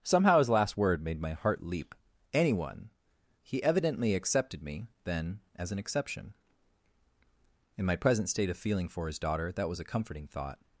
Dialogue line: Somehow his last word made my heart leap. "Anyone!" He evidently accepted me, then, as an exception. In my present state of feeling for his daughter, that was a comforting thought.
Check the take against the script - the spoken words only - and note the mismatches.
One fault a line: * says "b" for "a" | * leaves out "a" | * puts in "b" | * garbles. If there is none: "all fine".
all fine